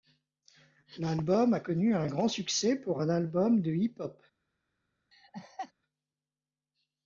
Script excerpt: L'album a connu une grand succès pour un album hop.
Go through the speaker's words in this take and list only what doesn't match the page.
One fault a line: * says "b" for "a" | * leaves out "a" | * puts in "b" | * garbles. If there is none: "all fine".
* says "un" for "une"
* puts in "de hip"